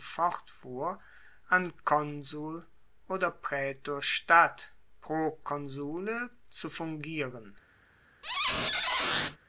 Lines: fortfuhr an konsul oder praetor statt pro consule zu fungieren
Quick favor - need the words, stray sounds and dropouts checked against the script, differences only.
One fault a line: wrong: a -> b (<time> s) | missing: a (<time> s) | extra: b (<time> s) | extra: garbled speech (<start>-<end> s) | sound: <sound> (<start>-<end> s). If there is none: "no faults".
sound: squeak (8.2-9.4 s)